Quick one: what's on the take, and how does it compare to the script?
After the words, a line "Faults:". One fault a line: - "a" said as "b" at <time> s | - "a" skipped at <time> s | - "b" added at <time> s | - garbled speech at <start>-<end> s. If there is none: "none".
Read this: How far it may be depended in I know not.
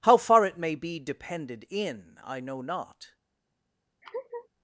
How far it may be depended in I know not.
Faults:
none